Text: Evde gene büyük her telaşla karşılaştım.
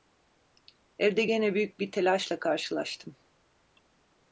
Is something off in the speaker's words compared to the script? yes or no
yes